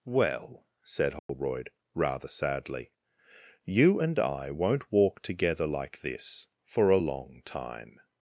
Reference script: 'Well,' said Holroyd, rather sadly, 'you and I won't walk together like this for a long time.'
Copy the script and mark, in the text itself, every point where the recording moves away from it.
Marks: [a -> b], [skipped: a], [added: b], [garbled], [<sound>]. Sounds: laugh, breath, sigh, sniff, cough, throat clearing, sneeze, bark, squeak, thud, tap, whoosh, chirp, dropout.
'Well,' said Holroyd, [dropout] rather sadly, 'you and I won't walk together like this for a long time.'